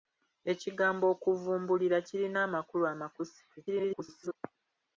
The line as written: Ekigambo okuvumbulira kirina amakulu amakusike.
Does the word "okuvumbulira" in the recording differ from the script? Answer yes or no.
no